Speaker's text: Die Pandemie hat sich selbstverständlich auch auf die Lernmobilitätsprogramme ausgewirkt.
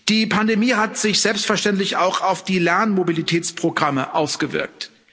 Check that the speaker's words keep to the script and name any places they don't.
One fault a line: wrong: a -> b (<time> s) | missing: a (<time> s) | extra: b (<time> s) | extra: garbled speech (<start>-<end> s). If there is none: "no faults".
no faults